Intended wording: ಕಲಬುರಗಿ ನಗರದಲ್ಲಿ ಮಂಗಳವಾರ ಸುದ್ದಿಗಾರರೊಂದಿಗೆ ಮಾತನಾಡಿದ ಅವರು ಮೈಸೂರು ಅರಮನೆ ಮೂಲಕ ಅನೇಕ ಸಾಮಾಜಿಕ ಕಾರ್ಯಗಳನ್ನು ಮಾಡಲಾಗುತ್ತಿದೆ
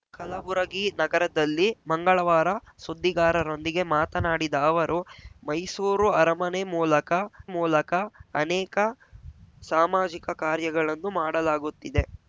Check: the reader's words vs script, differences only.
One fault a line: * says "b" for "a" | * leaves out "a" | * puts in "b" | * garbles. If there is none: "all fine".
* puts in "ಮೂಲಕ"